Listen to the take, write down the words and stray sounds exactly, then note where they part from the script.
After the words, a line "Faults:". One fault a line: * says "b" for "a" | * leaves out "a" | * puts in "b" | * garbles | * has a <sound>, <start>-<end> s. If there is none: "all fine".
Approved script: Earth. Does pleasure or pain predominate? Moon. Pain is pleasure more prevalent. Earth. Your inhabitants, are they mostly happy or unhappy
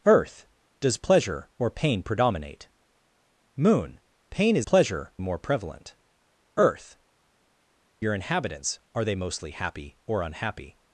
Earth. Does pleasure or pain predominate? Moon. Pain is pleasure more prevalent. Earth. Your inhabitants, are they mostly happy or unhappy
Faults:
all fine